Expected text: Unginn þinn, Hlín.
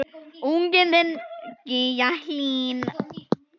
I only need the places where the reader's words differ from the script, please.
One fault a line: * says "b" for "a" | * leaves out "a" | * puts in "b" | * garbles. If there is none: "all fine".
* puts in "Gígja"